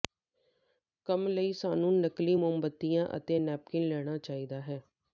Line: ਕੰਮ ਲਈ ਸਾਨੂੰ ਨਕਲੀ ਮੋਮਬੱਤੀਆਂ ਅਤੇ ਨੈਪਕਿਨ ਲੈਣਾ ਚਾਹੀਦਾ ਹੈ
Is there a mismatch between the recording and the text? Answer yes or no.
no